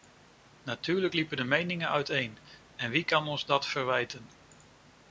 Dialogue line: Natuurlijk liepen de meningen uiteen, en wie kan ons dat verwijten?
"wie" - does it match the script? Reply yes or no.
yes